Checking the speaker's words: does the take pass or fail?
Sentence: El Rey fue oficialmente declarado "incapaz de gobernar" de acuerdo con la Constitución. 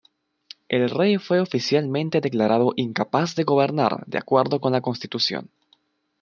pass